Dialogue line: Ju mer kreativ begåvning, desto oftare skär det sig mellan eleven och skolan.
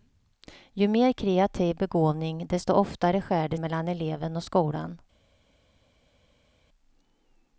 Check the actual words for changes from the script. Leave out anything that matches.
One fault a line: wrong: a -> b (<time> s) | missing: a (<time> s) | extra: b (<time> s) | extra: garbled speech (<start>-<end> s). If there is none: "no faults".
missing: sig (3.6 s)